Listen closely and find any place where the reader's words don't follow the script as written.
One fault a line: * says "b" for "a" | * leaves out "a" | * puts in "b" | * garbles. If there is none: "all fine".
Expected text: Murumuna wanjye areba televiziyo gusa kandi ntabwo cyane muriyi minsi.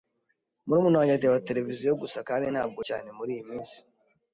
all fine